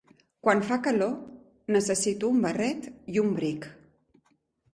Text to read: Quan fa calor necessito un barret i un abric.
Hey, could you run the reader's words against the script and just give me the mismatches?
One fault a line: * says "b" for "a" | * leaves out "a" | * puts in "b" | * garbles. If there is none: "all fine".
all fine